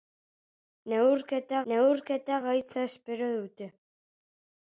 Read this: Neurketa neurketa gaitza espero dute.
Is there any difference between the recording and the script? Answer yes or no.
no